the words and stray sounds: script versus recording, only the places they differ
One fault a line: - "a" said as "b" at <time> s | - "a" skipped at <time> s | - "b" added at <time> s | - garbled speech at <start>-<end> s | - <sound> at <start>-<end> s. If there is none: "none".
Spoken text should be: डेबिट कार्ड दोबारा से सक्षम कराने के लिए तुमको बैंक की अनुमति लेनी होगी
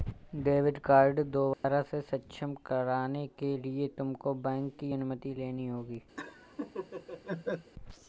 - dropout at 1.5-1.6 s
- laugh at 6.2-7.7 s